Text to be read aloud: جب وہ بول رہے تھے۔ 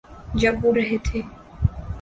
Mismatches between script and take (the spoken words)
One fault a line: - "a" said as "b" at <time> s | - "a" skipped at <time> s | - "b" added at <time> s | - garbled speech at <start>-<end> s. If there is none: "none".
- "بول" skipped at 0.7 s